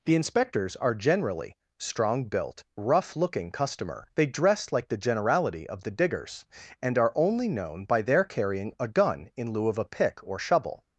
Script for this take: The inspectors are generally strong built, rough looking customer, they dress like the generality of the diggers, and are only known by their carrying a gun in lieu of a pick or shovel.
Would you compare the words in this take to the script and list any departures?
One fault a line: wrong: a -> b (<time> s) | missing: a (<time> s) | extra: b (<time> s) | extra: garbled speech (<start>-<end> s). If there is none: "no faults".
no faults